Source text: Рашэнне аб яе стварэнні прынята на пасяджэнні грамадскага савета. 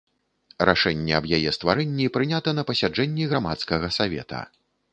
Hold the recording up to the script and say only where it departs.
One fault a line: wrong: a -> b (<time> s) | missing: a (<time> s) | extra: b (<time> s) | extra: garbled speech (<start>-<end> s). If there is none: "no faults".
no faults